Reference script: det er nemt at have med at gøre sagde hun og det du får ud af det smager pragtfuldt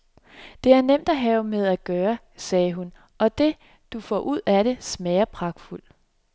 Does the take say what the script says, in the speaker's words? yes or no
yes